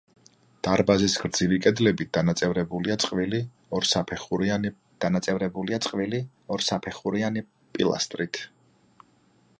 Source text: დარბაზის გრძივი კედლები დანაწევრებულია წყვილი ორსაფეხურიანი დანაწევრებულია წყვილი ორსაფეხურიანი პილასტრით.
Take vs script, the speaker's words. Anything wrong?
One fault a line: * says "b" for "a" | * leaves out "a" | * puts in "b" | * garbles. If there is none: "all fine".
all fine